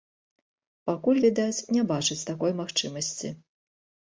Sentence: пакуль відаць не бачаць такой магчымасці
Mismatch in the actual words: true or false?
false